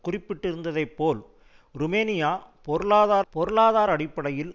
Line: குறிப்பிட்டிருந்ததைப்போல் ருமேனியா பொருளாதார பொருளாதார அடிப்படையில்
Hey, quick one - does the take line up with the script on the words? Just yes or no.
yes